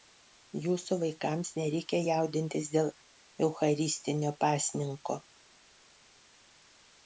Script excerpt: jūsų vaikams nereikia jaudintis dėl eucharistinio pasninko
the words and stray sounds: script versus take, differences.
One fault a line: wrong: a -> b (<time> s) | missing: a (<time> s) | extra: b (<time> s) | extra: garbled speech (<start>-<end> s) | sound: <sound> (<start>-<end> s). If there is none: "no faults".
no faults